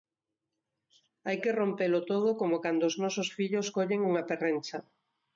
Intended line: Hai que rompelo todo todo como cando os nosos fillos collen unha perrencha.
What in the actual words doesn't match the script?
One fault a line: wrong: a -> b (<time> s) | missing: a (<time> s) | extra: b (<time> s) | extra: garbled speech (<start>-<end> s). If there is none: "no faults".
missing: todo (2.3 s)